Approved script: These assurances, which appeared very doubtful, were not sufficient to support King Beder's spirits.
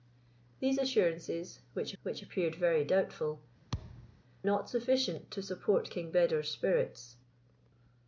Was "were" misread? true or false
true